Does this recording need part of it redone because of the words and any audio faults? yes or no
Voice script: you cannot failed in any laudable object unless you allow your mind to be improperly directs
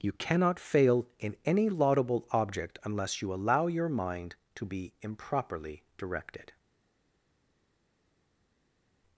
yes